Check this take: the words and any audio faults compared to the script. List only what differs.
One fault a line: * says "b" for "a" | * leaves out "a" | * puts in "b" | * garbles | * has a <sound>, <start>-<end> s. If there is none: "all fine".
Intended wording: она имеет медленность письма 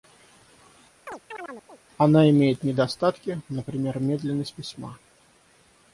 * has a chirp, 1.1-1.8 s
* puts in "недостатки например"